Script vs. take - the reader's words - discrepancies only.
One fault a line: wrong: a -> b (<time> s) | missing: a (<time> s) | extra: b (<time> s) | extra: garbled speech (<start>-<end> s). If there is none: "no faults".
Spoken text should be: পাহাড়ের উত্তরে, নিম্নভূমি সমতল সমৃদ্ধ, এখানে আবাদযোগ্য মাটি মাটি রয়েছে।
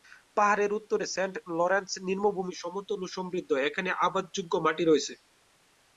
extra: সেন্ট লরেন্স (1.1 s)
extra: ও (3.0 s)
missing: মাটি (4.8 s)